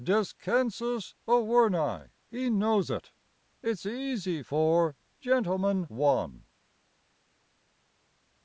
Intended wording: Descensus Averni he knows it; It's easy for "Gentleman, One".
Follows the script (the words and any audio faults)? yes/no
yes